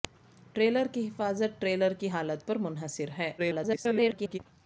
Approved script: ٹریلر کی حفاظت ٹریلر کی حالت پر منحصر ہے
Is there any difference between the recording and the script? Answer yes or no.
yes